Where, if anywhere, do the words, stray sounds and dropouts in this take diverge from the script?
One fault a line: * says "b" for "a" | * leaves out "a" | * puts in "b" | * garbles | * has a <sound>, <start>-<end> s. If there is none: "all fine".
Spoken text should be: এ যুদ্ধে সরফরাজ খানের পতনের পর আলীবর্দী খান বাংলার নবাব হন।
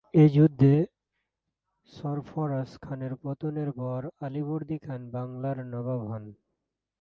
all fine